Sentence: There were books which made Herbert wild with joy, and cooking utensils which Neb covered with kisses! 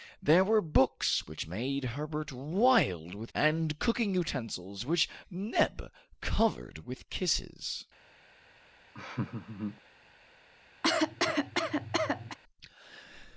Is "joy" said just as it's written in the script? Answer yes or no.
no